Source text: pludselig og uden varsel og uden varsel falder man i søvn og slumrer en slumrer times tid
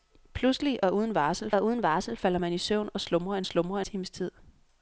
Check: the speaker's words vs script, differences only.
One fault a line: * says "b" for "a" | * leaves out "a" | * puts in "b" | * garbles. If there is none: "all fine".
all fine